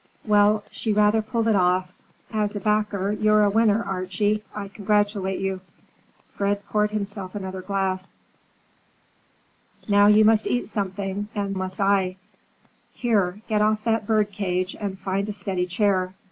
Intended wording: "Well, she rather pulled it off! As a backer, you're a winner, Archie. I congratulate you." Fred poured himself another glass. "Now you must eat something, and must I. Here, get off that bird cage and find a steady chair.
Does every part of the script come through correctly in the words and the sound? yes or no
yes